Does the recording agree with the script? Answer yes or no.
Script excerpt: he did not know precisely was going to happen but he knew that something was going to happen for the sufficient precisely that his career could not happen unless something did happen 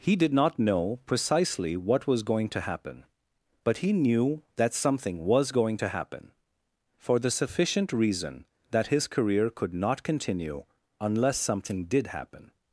no